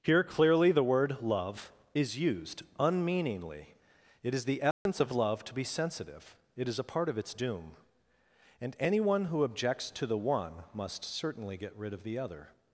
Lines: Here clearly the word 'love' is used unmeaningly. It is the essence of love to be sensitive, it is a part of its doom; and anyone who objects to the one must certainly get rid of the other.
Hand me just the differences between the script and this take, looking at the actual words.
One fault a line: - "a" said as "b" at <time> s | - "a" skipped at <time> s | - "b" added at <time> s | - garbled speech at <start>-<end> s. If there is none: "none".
none